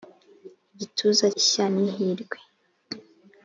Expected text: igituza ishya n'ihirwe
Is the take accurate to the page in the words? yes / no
yes